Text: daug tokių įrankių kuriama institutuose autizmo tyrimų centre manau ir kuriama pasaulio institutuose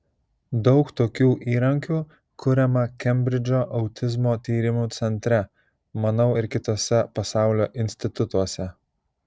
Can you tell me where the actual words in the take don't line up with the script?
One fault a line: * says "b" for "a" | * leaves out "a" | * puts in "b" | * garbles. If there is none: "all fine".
* says "kembridžo" for "institutuose"
* says "kituose" for "kuriama"